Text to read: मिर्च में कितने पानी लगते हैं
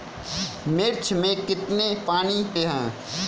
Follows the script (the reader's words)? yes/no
no